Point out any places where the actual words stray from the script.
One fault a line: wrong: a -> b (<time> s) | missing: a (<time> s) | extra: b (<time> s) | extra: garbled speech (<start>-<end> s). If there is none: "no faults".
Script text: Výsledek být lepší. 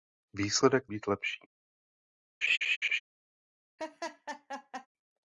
no faults